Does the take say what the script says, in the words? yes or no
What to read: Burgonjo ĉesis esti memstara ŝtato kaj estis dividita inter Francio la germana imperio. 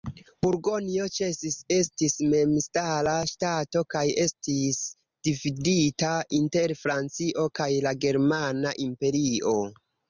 no